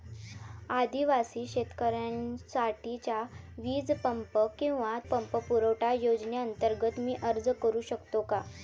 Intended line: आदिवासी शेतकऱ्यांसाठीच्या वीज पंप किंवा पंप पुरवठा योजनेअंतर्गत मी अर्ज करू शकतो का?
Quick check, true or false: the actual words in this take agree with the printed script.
true